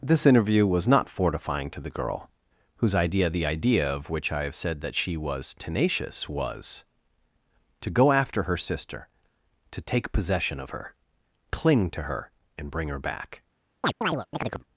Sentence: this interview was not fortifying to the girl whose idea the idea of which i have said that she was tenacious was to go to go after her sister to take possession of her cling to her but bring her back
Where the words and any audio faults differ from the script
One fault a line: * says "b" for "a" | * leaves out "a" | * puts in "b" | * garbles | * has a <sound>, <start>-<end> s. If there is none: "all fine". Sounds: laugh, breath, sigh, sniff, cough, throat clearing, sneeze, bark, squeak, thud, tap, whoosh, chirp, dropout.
* leaves out "to go"
* says "and" for "but"
* has a chirp, 13.8-14.6 s